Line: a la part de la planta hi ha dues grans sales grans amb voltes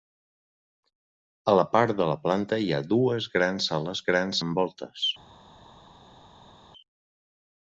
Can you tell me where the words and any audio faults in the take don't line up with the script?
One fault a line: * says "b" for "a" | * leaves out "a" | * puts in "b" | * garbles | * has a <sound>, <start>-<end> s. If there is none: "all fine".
all fine